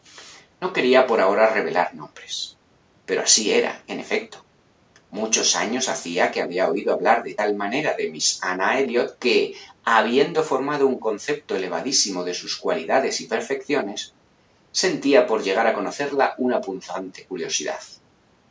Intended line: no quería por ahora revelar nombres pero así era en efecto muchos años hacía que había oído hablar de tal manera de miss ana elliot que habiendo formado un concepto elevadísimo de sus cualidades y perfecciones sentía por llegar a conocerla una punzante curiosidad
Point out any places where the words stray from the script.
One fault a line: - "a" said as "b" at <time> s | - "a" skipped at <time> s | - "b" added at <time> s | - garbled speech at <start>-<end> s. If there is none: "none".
none